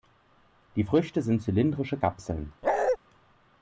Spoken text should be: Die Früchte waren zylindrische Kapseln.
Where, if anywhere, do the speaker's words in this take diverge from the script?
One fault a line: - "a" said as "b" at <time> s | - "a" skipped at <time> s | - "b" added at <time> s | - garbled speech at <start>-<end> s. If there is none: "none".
- "waren" said as "sind" at 1.2 s